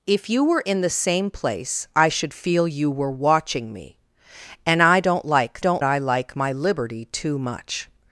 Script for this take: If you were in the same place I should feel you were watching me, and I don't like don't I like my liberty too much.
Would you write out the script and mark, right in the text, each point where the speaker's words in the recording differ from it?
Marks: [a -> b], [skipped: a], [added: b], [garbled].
If you were in the same place I should feel you were watching me, and I don't like don't I like my liberty too much.